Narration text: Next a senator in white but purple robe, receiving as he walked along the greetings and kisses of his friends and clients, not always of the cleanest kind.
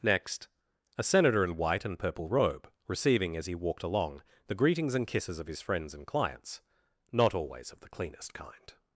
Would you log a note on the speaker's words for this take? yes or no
yes